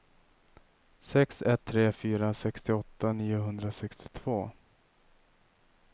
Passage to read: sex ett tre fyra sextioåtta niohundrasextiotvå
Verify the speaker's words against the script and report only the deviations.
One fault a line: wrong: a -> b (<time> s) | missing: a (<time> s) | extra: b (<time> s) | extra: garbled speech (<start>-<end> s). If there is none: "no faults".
no faults